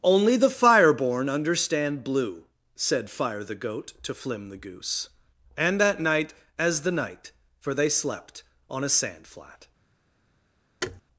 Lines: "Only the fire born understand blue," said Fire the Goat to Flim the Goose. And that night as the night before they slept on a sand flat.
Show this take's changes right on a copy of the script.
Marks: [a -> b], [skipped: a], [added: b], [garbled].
"Only the fire born understand blue," said Fire the Goat to Flim the Goose. And that night as the night [before -> for] they slept on a sand flat.